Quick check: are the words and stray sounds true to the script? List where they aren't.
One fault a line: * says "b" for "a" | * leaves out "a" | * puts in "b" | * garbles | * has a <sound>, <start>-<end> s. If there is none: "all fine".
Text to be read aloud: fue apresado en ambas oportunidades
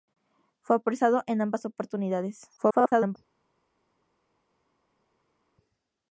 * garbles